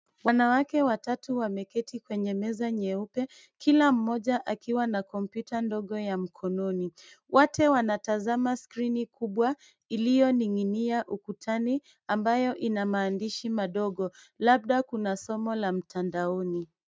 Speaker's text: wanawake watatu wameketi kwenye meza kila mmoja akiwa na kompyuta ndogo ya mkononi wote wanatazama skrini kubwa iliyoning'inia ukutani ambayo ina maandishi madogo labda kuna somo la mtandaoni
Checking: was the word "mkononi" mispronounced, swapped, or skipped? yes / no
no